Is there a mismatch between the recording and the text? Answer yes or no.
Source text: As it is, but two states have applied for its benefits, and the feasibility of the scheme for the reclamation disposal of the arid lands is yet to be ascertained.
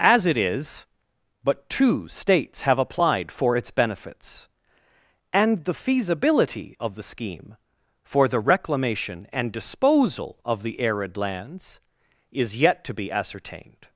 yes